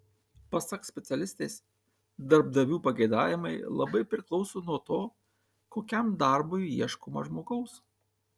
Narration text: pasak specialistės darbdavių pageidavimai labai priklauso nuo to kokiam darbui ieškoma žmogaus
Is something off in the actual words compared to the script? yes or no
no